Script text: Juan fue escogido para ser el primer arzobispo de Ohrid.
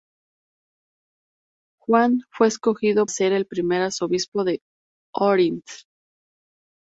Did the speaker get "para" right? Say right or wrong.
wrong